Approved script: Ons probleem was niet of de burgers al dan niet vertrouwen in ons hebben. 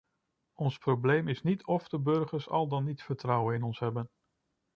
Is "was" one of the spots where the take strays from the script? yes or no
yes